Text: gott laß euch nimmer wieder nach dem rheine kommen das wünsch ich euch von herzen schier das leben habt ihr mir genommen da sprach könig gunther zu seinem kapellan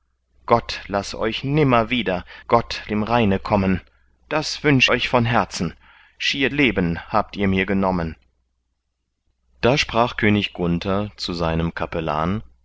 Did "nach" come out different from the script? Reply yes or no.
yes